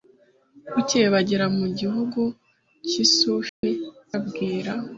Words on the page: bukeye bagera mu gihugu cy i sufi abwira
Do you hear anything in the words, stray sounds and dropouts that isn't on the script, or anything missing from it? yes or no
yes